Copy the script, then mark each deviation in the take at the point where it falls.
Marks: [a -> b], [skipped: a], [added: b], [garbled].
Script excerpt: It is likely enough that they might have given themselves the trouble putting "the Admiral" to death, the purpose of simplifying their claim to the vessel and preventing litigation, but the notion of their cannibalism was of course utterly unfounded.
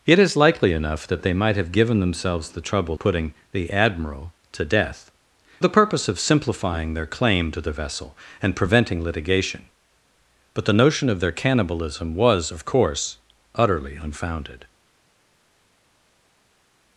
It is likely enough that they might have given themselves the trouble putting "the Admiral" to death, the purpose of simplifying their claim to the vessel and preventing litigation, but the notion of their cannibalism was of course utterly unfounded.